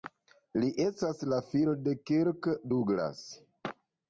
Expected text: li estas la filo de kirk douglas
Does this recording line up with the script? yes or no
yes